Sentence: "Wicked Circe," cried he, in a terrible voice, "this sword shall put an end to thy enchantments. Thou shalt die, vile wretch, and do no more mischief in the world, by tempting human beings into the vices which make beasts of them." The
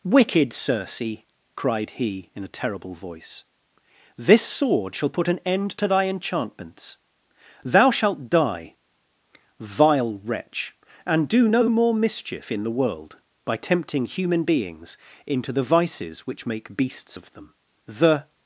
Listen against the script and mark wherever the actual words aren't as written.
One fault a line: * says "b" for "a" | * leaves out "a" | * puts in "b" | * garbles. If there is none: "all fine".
all fine